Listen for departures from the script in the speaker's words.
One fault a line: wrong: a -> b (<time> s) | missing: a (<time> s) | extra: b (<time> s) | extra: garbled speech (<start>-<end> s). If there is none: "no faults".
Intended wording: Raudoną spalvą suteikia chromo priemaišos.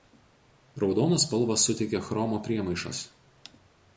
no faults